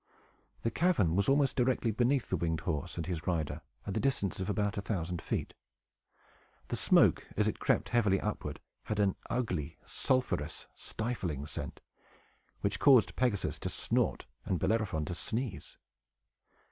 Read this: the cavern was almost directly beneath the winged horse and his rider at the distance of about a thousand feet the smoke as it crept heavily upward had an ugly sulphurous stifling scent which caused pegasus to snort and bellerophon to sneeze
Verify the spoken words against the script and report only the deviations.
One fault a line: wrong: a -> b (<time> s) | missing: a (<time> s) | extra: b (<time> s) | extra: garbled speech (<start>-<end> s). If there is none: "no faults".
no faults